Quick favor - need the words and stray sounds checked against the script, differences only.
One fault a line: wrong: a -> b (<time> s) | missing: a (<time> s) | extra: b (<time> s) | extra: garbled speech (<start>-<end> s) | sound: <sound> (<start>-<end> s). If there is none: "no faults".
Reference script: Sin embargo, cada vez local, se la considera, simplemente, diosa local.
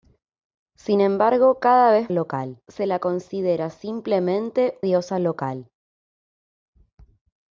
no faults